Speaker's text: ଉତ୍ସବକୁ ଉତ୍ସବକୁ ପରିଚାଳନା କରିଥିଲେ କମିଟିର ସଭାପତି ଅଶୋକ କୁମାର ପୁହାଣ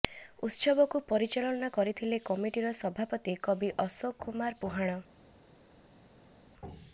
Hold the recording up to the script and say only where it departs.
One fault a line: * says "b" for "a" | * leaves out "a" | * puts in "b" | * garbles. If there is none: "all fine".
* leaves out "ଉତ୍ସବକୁ"
* puts in "କବି"